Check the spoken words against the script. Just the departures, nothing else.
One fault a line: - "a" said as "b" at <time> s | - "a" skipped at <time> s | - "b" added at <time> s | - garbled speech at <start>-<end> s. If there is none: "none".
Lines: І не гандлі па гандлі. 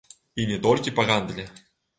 - "гандлі" said as "толькі" at 0.7 s